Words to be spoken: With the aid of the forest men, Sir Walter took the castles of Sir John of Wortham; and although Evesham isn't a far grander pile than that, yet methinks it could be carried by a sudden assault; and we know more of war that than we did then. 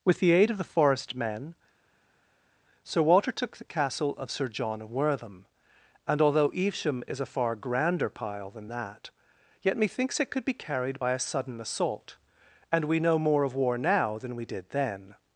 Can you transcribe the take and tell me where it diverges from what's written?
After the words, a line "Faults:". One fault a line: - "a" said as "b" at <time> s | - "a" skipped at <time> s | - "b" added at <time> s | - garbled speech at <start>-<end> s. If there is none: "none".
With the aid of the forest men, Sir Walter took the castle of Sir John of Wortham; and although Evesham is a far grander pile than that, yet methinks it could be carried by a sudden assault; and we know more of war now than we did then.
Faults:
- "castles" said as "castle" at 3.6 s
- "isn't" said as "is" at 7.1 s
- "that" said as "now" at 13.8 s